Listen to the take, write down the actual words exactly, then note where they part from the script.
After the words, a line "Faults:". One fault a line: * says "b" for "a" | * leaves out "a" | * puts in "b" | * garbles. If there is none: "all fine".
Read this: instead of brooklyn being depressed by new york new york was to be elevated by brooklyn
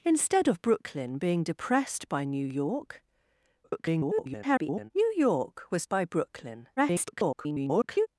instead of brooklyn being depressed by new york [garbled] new york was by brooklyn [garbled]
Faults:
* garbles
* leaves out "to be elevated"
* garbles